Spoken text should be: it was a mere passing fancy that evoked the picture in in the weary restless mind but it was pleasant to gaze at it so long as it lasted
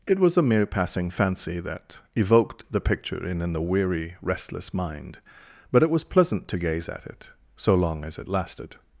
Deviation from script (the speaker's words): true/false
false